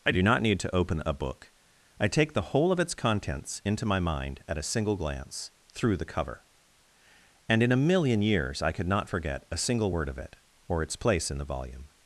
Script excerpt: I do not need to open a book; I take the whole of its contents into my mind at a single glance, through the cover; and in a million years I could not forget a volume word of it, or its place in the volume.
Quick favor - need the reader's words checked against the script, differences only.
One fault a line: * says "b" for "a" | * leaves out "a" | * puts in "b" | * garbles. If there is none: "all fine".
* says "single" for "volume"